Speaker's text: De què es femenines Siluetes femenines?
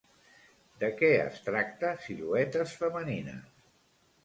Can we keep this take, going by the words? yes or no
no